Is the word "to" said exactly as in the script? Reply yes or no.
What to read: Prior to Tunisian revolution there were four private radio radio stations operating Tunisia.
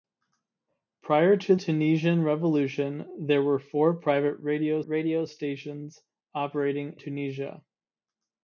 yes